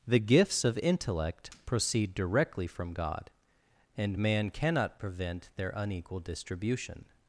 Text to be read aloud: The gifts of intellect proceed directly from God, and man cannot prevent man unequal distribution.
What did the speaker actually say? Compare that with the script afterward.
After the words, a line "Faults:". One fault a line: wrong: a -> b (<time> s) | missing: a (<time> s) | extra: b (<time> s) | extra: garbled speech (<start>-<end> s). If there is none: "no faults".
The gifts of intellect proceed directly from God, and man cannot prevent their unequal distribution.
Faults:
wrong: man -> their (5.6 s)